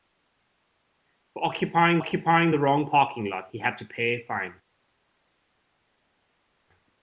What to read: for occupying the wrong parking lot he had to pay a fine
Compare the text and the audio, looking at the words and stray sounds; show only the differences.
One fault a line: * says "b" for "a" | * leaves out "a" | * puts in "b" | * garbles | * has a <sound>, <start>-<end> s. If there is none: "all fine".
* puts in "occupying"